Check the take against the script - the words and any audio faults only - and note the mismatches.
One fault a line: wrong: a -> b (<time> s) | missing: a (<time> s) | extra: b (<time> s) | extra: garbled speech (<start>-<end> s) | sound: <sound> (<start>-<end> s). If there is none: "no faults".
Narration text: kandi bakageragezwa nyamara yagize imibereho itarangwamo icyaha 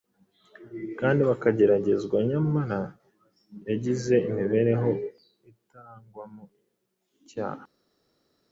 no faults